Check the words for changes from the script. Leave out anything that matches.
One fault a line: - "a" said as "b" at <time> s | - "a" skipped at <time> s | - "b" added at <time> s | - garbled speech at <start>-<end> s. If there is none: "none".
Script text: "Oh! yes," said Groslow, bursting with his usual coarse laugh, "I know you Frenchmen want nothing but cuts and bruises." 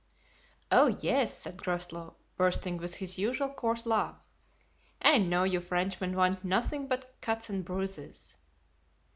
none